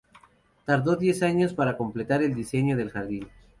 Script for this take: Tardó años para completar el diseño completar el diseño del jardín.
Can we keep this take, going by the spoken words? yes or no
no